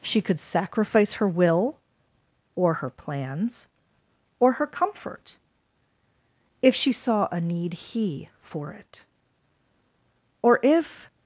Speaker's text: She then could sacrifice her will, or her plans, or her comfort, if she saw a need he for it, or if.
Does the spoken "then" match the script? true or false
false